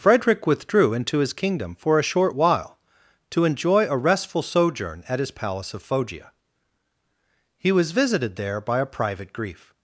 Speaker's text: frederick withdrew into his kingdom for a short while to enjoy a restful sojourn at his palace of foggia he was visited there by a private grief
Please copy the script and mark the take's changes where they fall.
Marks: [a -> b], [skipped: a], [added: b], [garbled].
frederick withdrew into his kingdom for a short while to enjoy a restful sojourn at his palace of foggia he was visited there by a private grief